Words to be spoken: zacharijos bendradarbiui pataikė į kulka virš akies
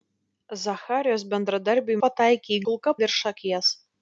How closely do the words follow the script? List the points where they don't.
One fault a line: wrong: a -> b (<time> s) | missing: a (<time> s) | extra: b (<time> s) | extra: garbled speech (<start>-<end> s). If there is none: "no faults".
no faults